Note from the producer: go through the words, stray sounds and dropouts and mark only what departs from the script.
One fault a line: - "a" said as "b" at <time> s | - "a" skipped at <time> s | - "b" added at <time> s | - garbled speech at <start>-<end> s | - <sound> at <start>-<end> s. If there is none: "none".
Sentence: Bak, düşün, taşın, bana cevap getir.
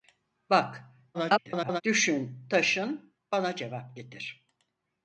- garbled speech at 1.1-1.8 s